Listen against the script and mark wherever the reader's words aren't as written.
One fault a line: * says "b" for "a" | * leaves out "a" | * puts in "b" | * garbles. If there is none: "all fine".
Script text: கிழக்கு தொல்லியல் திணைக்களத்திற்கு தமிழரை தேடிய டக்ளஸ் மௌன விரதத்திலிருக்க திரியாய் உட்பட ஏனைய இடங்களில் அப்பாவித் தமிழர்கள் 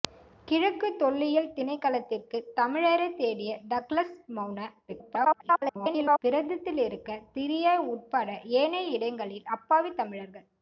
* garbles